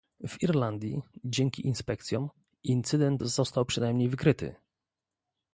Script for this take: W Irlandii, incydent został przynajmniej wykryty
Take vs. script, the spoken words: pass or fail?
fail